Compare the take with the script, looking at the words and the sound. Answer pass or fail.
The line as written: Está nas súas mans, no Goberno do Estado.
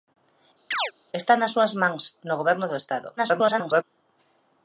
fail